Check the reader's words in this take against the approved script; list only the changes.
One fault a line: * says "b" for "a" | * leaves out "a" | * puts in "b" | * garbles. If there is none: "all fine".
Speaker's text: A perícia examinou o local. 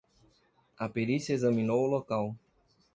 all fine